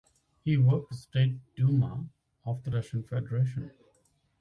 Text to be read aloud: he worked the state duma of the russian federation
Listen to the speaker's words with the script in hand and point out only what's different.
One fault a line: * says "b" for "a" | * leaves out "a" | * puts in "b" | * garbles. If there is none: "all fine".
all fine